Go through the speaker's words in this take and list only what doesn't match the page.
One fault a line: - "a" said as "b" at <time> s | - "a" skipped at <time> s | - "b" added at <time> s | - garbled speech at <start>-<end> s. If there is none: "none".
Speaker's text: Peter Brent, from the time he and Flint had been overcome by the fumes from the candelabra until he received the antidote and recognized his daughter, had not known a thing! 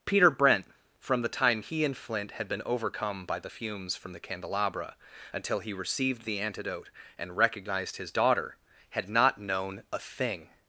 none